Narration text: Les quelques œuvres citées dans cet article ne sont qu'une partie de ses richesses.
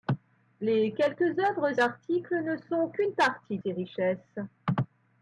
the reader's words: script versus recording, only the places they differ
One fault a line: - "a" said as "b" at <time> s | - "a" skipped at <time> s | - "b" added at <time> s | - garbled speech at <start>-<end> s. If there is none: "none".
- "citées dans cet" skipped at 1.8 s
- "de" skipped at 3.6 s